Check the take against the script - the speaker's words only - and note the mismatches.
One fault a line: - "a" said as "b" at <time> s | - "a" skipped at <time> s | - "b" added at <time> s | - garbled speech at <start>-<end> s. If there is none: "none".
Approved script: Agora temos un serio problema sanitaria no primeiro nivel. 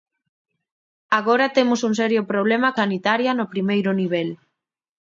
none